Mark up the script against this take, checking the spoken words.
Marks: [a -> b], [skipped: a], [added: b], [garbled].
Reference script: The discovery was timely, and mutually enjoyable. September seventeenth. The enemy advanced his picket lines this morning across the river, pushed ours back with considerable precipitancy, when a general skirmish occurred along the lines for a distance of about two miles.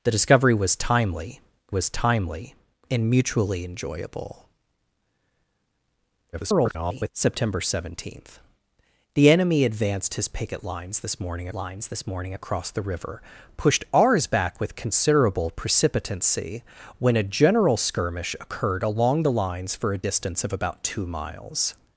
The discovery was timely, [added: was timely] and mutually enjoyable. [garbled] September seventeenth. The enemy advanced his picket lines this morning [added: lines this morning] across the river, pushed ours back with considerable precipitancy, when a general skirmish occurred along the lines for a distance of about two miles.